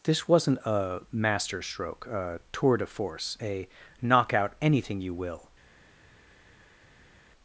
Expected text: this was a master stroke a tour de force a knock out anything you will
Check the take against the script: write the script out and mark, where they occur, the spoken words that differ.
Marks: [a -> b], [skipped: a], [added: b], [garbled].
this [was -> wasn't] a master stroke a tour de force a knock out anything you will